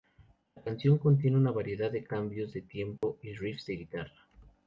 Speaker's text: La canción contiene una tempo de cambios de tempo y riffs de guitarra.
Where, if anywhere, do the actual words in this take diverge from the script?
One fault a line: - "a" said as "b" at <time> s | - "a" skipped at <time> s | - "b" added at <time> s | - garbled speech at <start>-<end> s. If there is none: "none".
- "tempo" said as "variedad" at 1.5 s